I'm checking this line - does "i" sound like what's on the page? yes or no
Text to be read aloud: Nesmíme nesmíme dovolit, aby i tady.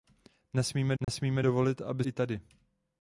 yes